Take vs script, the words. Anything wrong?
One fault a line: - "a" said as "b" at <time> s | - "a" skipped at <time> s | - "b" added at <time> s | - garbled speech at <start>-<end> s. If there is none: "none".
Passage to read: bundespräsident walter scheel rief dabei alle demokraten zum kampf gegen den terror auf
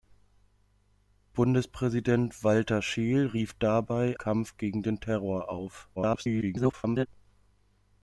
- "alle demokraten zum" skipped at 4.2 s
- garbled speech at 6.0-7.1 s